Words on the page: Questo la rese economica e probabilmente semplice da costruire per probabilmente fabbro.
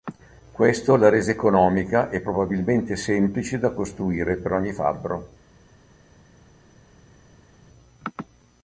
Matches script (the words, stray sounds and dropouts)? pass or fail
fail